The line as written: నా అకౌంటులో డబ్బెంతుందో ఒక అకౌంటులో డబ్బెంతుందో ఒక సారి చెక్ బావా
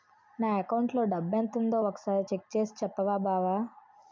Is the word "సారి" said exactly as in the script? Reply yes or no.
no